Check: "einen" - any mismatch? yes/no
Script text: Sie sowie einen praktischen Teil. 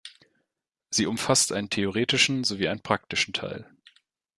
no